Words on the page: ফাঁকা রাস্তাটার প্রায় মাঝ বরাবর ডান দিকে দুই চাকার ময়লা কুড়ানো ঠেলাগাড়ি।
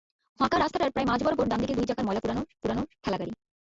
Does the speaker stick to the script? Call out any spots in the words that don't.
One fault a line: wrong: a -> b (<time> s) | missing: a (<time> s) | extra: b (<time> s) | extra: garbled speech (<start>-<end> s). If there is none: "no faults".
extra: কুড়ানো (2.6 s)